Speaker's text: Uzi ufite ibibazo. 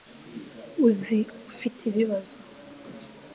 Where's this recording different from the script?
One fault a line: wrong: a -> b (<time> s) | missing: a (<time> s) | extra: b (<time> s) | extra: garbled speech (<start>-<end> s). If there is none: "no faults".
no faults